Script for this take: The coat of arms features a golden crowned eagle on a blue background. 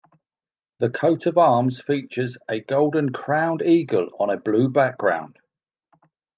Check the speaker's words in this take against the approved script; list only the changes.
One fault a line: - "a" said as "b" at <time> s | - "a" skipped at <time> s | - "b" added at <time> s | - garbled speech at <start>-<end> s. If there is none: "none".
none